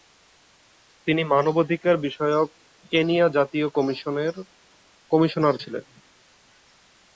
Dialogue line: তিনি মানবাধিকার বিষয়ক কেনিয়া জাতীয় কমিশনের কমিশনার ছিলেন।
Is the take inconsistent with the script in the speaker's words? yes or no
no